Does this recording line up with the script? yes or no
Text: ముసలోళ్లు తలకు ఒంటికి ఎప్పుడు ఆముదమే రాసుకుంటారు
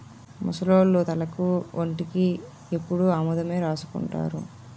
yes